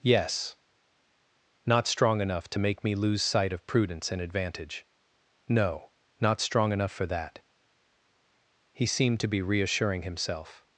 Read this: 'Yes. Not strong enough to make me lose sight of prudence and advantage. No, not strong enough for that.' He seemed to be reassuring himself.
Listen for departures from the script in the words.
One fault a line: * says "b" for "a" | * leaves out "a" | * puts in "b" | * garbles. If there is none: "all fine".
all fine